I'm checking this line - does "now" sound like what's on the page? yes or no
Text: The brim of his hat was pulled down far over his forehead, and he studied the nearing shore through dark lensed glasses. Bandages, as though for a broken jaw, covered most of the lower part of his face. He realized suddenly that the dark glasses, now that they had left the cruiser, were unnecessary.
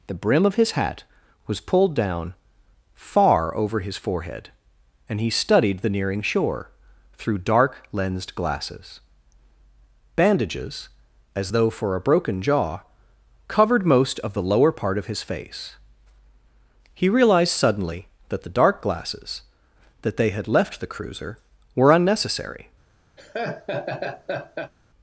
no